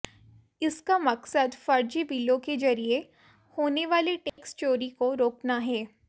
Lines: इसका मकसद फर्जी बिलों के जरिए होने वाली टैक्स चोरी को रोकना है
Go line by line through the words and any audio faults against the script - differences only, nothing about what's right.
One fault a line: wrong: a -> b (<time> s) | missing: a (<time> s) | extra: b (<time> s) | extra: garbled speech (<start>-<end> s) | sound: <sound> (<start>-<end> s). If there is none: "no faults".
sound: dropout (4.3-4.4 s)